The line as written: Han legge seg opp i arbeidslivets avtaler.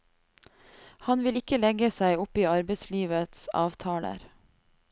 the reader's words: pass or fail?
fail